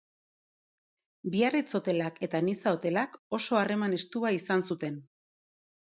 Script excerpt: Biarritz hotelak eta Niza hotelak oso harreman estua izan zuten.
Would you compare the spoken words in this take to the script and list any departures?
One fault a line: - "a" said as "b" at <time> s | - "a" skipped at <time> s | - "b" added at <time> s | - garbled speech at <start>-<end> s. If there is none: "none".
none